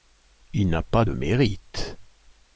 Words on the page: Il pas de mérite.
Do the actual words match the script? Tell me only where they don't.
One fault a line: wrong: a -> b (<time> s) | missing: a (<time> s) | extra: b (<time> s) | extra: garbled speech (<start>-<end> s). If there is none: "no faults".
extra: n'a (0.7 s)